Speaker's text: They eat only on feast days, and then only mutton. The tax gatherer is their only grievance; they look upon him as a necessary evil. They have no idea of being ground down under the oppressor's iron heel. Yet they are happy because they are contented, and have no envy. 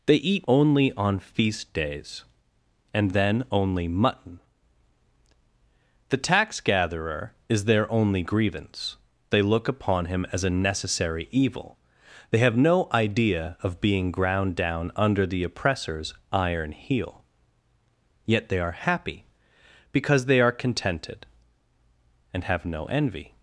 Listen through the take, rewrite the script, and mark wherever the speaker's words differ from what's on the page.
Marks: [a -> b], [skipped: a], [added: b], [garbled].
They eat only on feast days, and then only mutton. The tax gatherer is their only grievance; they look upon him as a necessary evil. They have no idea of being ground down under the oppressor's iron heel. Yet they are happy because they are contented, and have no envy.